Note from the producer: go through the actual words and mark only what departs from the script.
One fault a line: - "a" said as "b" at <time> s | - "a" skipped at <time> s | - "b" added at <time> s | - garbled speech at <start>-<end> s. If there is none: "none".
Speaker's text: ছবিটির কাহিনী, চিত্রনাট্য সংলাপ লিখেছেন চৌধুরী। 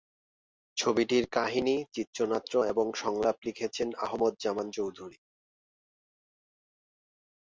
- "এবং" added at 2.6 s
- "আহমদ জামান" added at 4.0 s